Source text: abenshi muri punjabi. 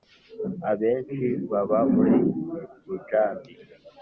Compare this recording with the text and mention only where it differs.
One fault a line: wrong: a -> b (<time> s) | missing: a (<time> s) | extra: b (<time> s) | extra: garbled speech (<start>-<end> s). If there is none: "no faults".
extra: baba (1.5 s)